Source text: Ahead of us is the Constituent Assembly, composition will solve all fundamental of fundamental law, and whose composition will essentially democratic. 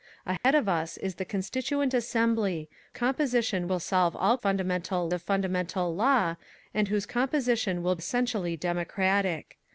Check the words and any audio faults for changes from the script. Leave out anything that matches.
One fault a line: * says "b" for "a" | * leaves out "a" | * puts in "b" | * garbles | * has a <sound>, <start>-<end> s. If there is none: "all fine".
* has a dropout, 0.4-0.4 s